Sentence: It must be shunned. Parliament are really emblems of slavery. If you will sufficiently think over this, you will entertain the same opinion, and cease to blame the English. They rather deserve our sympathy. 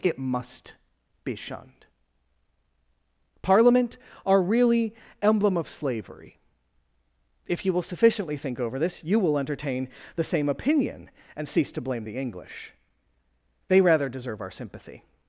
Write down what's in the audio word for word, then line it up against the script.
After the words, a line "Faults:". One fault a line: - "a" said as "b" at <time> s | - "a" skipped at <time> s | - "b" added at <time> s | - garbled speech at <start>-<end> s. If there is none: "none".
It must be shunned. Parliament are really emblem of slavery. If you will sufficiently think over this, you will entertain the same opinion, and cease to blame the English. They rather deserve our sympathy.
Faults:
- "emblems" said as "emblem" at 5.2 s